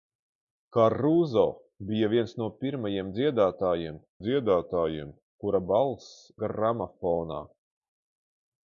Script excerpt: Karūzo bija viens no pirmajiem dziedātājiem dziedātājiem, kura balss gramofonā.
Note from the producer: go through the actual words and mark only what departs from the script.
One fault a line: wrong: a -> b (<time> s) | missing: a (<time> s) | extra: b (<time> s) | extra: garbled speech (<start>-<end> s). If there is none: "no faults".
no faults